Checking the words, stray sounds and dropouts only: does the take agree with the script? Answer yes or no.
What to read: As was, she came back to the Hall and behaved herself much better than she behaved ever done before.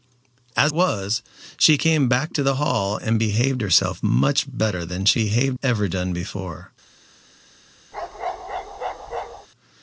no